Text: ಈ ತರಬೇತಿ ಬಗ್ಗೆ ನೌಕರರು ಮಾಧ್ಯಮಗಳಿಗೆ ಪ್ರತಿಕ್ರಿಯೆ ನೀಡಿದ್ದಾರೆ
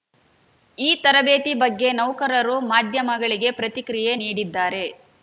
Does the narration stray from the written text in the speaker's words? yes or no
no